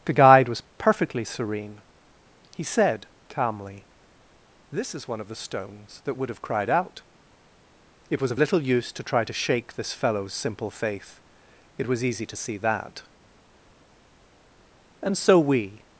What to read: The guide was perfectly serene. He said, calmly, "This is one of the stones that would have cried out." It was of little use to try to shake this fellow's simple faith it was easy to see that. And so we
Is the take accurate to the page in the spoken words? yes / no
yes